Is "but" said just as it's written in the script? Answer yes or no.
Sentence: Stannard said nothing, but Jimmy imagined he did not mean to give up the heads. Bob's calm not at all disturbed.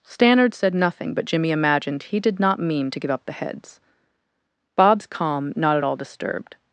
yes